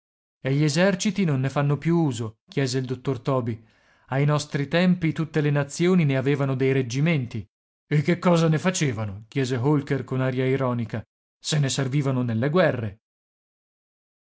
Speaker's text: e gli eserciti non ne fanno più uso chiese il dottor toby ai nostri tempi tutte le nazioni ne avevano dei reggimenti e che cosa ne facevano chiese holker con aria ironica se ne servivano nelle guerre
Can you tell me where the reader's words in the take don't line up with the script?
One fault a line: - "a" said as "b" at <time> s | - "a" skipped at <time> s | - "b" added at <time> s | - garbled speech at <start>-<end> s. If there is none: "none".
none